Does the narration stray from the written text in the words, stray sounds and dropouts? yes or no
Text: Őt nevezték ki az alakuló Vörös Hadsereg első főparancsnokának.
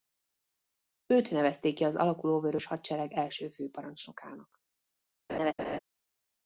yes